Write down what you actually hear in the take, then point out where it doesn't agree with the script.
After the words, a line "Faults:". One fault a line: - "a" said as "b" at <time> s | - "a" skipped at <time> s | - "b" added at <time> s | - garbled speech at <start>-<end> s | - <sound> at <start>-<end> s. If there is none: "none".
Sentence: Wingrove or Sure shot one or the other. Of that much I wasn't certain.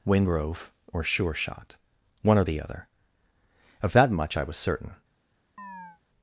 Wingrove or Sure shot one or the other. Of that much I was certain.
Faults:
- "wasn't" said as "was" at 4.4 s
- chirp at 5.6-6.0 s